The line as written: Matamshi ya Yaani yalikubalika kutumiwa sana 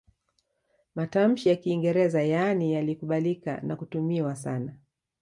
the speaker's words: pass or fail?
fail